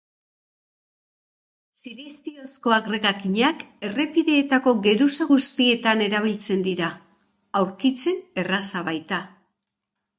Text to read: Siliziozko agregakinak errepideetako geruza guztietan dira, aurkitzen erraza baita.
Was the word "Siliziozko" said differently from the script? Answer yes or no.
no